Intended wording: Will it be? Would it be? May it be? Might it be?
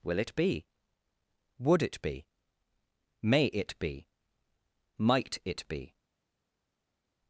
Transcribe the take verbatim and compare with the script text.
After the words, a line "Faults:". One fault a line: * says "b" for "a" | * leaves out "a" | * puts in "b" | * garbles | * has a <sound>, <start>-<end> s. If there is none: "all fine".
Will it be? Would it be? May it be? Might it be?
Faults:
all fine